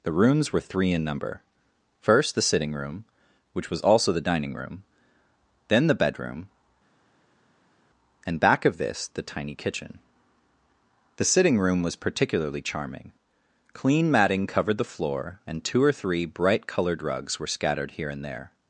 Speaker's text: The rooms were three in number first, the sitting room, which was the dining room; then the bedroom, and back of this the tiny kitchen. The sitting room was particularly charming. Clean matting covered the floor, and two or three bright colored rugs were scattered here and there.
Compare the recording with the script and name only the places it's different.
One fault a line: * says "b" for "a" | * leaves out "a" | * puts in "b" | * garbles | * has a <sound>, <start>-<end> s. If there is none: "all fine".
* puts in "also"